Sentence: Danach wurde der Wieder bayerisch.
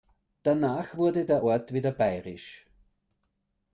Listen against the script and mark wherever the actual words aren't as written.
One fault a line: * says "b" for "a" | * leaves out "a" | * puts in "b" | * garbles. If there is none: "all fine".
* puts in "Ort"